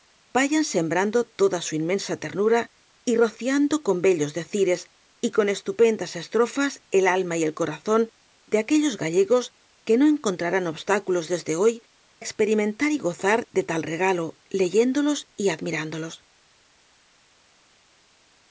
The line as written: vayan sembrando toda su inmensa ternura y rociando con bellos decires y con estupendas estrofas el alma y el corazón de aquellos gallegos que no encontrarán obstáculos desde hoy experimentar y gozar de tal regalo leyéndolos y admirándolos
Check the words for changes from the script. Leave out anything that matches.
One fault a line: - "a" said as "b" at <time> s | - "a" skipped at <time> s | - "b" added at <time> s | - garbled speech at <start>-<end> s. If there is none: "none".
none